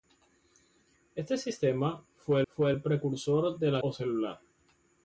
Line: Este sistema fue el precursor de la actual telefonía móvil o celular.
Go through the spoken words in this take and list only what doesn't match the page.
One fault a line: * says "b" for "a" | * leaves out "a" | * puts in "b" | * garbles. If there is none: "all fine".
* puts in "fue"
* leaves out "actual telefonía móvil"